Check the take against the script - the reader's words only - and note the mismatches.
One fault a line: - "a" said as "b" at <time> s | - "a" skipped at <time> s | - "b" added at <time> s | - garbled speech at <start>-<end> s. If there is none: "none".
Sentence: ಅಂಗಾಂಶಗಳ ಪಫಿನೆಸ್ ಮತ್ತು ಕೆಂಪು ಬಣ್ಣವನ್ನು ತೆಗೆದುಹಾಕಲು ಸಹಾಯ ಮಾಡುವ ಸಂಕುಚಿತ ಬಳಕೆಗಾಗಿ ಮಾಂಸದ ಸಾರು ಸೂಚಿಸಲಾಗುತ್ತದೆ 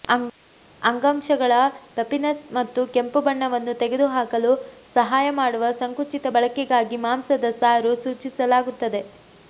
none